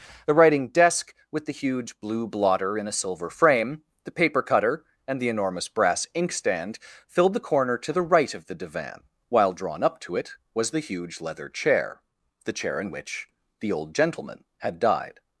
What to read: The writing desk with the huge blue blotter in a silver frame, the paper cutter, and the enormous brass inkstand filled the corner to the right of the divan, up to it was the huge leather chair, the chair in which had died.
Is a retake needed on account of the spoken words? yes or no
yes